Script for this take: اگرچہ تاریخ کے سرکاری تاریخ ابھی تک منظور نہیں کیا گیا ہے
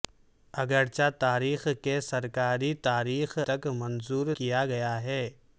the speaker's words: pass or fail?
fail